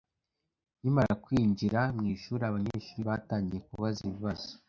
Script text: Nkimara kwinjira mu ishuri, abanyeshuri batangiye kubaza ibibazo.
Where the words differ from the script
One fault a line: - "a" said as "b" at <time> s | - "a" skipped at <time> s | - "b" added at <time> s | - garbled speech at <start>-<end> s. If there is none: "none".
none